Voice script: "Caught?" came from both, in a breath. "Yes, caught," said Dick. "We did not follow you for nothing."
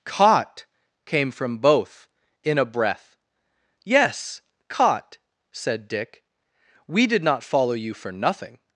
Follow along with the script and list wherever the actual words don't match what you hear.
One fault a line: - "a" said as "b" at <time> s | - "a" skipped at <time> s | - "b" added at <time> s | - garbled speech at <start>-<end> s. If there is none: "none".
none